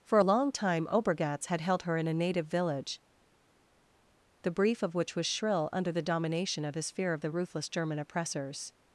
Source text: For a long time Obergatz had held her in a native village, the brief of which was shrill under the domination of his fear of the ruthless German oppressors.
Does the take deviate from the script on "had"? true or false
false